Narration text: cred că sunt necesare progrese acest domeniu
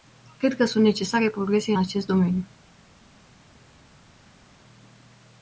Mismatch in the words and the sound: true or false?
false